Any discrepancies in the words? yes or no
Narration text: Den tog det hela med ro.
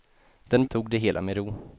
no